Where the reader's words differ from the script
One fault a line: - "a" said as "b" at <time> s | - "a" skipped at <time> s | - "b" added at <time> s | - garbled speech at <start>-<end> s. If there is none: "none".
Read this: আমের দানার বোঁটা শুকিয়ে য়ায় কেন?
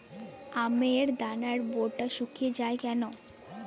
none